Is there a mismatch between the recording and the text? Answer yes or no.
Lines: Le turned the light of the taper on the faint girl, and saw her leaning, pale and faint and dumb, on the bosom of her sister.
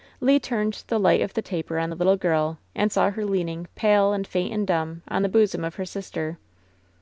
yes